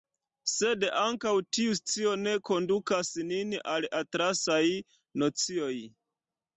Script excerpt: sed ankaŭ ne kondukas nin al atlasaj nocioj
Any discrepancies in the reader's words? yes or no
yes